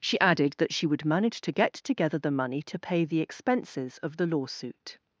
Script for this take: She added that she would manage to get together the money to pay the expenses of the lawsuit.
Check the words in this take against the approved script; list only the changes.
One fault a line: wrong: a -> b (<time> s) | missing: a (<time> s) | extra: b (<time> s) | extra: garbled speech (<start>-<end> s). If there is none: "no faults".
no faults